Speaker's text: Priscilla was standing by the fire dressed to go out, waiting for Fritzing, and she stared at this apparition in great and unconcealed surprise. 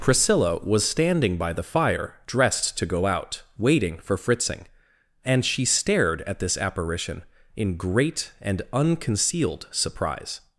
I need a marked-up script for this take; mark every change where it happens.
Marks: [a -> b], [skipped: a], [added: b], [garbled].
Priscilla was standing by the fire dressed to go out, waiting for Fritzing, and she stared at this apparition in great and unconcealed surprise.